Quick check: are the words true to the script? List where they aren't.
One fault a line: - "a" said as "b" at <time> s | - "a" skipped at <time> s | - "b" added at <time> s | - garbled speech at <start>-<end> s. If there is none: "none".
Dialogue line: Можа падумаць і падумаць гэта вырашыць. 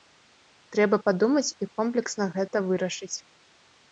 - "Можа" said as "Трэба" at 0.8 s
- "падумаць" said as "комплексна" at 1.8 s